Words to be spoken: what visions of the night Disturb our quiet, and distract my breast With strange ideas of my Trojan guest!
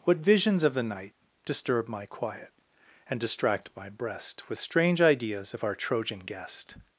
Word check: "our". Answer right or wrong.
wrong